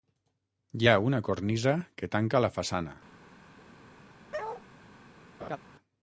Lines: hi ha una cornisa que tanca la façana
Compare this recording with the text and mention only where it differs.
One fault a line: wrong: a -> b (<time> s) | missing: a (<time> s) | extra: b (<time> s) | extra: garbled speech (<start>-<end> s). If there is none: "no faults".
no faults